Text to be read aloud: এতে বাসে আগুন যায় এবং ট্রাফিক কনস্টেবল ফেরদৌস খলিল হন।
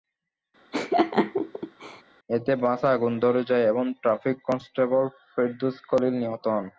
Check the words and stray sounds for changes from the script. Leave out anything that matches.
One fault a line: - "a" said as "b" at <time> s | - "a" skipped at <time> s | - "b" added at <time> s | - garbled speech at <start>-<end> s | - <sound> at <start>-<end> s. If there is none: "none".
- laugh at 0.7-2.0 s
- "ধরে" added at 3.2 s
- "নিহত" added at 6.2 s